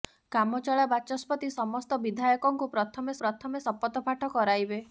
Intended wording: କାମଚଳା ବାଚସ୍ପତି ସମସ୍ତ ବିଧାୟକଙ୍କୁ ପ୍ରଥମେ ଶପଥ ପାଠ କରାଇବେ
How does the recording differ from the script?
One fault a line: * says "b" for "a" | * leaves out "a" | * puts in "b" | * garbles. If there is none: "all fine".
* puts in "ପ୍ରଥମେ"